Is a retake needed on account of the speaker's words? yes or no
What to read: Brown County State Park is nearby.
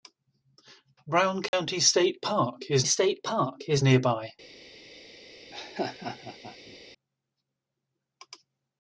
yes